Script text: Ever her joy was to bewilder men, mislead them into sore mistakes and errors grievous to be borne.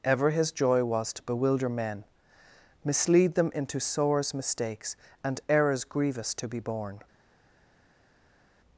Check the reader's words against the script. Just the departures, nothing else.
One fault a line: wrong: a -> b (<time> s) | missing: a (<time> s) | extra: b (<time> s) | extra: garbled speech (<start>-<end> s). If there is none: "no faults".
wrong: her -> his (0.3 s)
wrong: sore -> sores (3.8 s)